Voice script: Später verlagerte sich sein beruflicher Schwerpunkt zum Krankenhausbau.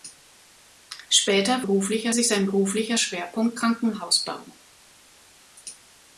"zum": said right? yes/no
no